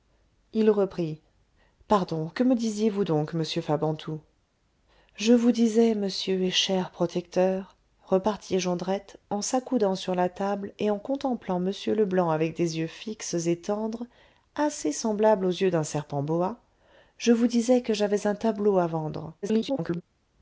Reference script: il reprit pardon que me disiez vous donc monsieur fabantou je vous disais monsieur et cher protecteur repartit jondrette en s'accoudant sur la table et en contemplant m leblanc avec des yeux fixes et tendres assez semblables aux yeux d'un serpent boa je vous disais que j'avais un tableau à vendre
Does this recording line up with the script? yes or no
no